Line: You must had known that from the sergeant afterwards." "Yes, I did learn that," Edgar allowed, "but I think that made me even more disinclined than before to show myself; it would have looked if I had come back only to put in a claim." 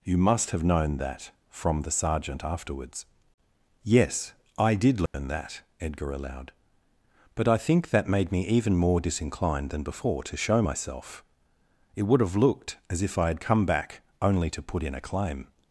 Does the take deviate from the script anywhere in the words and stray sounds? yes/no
yes